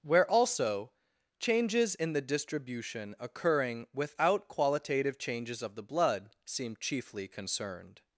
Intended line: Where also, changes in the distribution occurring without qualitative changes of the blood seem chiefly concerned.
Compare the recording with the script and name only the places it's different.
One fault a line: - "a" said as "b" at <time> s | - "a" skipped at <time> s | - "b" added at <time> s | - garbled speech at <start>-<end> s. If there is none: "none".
none